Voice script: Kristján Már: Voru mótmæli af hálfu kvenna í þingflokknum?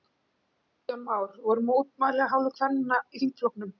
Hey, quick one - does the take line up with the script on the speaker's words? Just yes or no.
yes